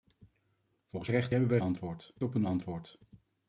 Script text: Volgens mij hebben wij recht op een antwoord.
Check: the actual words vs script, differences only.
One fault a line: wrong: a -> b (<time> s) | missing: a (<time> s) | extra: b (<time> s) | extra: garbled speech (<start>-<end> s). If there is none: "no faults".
wrong: mij -> recht (1.1 s)
wrong: recht -> antwoord (1.6 s)